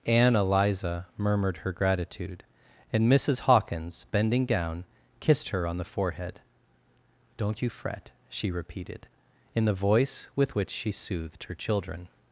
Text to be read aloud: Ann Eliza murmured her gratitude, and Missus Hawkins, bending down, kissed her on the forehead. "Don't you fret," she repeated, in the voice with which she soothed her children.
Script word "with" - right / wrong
right